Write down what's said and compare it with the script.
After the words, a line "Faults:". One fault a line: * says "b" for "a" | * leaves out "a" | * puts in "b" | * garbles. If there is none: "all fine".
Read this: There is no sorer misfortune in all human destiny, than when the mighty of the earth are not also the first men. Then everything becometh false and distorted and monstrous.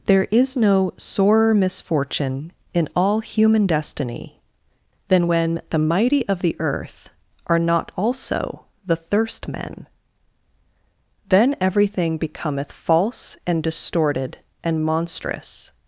There is no sorer misfortune in all human destiny, than when the mighty of the earth are not also the thirst men. Then everything becometh false and distorted and monstrous.
Faults:
* says "thirst" for "first"